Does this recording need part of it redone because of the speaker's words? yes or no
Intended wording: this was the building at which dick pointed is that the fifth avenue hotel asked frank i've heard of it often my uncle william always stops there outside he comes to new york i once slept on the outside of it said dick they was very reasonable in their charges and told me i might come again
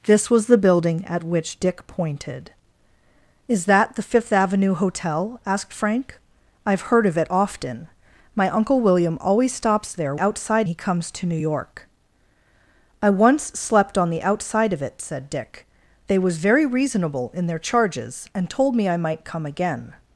no